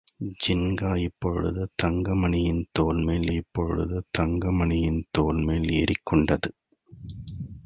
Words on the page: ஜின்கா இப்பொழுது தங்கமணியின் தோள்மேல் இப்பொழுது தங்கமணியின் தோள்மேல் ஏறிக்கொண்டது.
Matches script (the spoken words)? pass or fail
pass